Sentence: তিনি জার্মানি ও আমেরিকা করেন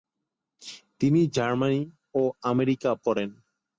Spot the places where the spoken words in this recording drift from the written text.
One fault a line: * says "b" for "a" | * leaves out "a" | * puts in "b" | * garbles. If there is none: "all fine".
all fine